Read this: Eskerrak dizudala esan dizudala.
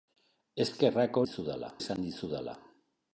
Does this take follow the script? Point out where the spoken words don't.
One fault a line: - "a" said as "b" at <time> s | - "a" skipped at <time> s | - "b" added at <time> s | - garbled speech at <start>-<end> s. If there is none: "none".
none